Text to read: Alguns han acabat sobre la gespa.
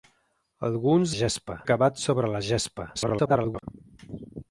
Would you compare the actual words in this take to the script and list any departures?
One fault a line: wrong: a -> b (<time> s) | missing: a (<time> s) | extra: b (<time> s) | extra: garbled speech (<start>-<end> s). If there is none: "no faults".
wrong: han -> gespa (1.2 s)
extra: garbled speech (2.9-3.6 s)